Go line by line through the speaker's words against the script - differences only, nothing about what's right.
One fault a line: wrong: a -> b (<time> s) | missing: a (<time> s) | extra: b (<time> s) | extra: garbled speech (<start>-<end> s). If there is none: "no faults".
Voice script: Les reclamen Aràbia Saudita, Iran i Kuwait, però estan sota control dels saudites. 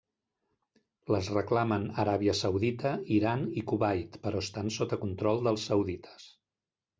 no faults